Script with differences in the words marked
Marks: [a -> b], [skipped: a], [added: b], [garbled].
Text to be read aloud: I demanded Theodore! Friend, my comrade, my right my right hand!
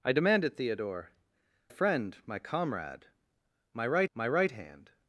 I demanded Theodore! Friend, my comrade, my right my right hand!